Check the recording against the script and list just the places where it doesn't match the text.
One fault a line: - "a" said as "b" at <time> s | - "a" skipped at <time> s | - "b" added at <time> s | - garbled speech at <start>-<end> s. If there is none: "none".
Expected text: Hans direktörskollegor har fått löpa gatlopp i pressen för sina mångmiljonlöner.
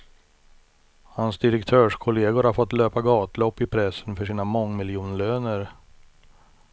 none